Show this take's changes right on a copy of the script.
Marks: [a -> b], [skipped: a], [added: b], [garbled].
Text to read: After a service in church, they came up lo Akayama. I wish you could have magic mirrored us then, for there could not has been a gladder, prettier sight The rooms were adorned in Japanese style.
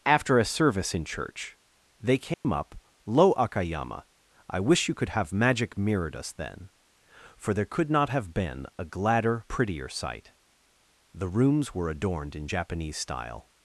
After a service in church, they came up lo Akayama. I wish you could have magic mirrored us then, for there could not [has -> have] been a gladder, prettier sight The rooms were adorned in Japanese style.